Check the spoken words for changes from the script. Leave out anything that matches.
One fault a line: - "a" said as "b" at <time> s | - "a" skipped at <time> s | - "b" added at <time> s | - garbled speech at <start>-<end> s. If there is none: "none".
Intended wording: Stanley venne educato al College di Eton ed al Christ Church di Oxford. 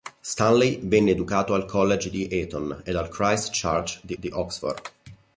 - "di" added at 4.1 s